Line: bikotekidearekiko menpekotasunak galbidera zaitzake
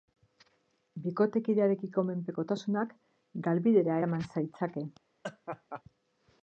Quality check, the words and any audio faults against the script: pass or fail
fail